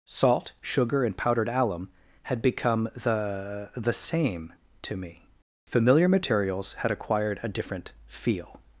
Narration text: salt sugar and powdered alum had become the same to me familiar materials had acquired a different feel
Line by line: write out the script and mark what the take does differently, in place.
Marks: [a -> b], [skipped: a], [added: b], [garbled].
salt sugar and powdered alum had become the [added: the] same to me familiar materials had acquired a different feel